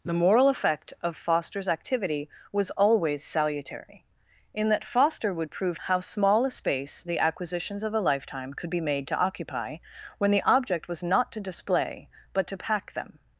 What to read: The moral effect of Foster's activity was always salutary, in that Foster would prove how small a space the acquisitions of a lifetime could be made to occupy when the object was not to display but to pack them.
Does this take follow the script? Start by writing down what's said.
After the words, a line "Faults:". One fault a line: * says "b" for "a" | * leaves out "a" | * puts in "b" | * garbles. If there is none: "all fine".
The moral effect of Foster's activity was always salutary, in that Foster would prove how small a space the acquisitions of a lifetime could be made to occupy when the object was not to display but to pack them.
Faults:
all fine